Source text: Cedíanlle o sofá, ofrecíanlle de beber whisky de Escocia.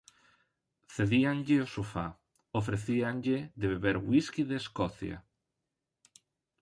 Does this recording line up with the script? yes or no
yes